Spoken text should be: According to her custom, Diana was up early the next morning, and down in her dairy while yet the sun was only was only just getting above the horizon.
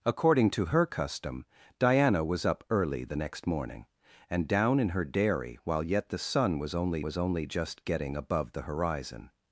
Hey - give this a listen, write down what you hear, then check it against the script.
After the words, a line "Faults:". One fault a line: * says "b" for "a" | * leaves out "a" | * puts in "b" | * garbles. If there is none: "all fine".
According to her custom, Diana was up early the next morning, and down in her dairy while yet the sun was only was only just getting above the horizon.
Faults:
all fine